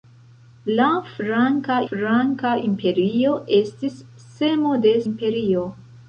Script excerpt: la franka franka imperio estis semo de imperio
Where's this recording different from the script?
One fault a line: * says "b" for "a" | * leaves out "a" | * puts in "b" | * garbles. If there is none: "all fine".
all fine